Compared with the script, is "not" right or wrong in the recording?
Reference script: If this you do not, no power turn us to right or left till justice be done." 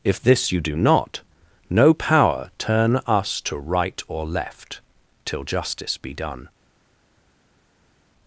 right